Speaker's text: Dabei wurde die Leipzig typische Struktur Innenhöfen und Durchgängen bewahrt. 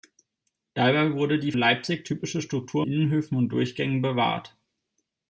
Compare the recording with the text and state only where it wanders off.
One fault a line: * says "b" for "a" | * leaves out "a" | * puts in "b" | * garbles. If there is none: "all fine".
all fine